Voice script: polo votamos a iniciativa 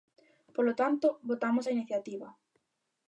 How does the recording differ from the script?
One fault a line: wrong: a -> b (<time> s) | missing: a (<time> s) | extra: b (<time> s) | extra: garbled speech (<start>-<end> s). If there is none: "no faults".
extra: tanto (0.8 s)